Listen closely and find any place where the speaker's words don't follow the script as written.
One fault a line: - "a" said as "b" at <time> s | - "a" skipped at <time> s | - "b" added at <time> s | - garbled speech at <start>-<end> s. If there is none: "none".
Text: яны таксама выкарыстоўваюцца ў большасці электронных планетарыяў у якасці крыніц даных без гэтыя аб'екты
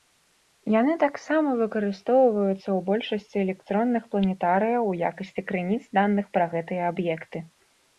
- "без" said as "пра" at 6.4 s